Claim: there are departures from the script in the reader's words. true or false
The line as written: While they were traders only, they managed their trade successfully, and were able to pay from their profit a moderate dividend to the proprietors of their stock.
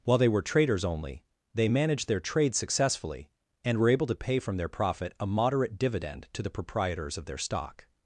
false